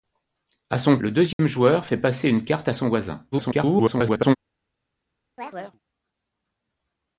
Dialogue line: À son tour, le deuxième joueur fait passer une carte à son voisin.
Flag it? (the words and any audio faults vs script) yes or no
yes